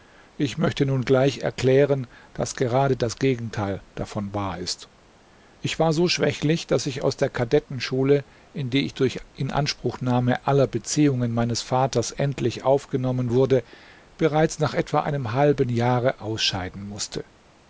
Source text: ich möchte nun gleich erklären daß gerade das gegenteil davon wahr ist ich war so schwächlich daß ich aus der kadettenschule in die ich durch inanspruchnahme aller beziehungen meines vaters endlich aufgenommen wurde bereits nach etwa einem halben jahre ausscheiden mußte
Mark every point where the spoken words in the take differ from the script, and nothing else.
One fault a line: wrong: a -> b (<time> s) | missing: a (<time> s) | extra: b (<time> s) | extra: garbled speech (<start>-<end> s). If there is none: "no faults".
no faults